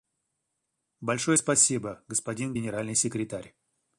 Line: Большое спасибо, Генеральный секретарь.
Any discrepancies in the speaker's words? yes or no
yes